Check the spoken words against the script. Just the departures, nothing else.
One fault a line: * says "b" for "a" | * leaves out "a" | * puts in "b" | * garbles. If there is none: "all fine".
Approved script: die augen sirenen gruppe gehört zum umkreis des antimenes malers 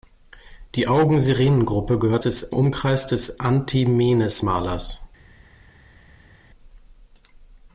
* says "des" for "zum"